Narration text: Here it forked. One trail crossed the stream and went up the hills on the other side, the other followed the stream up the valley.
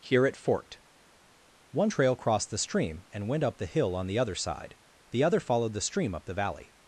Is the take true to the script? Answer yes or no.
no